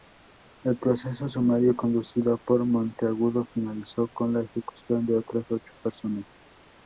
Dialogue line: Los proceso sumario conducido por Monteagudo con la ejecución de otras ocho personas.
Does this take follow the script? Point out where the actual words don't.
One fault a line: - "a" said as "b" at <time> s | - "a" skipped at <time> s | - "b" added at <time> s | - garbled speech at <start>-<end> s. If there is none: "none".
- "Los" said as "El" at 0.6 s
- "finalizó" added at 3.5 s